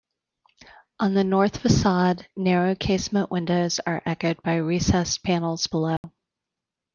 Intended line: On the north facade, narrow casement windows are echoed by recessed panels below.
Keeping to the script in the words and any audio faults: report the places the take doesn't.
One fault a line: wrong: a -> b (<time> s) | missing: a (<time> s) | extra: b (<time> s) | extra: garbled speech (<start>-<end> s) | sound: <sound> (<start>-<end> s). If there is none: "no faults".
sound: dropout (6.0-6.0 s)